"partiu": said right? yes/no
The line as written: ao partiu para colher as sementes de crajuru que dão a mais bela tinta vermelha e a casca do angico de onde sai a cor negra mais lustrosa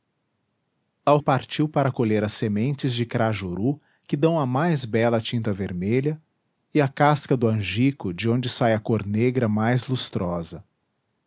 yes